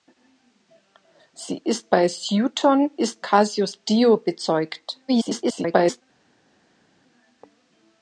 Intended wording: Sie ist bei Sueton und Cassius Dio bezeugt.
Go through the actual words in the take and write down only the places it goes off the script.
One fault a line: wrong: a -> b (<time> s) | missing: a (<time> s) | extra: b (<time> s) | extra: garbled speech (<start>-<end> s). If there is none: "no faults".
wrong: und -> ist (3.0 s)
extra: garbled speech (5.1-6.0 s)